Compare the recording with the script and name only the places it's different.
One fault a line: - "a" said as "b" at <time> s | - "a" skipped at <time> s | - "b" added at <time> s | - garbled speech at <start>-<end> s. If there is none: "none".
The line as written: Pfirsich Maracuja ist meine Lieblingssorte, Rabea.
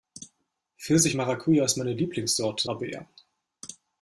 none